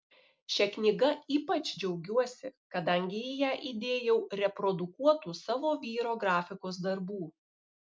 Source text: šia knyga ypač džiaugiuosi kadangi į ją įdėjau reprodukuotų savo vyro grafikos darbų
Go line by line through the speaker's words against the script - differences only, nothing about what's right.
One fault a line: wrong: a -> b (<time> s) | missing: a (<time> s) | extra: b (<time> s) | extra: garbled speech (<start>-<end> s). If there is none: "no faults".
no faults